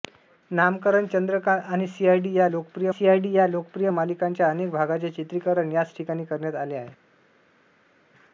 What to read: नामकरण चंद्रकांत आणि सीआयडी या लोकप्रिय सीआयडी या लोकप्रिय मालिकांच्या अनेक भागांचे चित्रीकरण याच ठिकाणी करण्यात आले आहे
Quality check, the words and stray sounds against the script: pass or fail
pass